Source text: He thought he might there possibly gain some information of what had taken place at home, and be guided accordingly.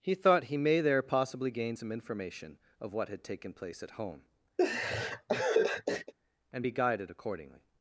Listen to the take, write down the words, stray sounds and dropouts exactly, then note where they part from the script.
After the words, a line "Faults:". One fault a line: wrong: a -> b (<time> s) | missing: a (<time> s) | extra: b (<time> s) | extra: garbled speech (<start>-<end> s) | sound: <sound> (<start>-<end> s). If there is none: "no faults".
He thought he may there possibly gain some information of what had taken place at home, and be guided accordingly.
Faults:
wrong: might -> may (0.6 s)
sound: laugh (4.6-6.1 s)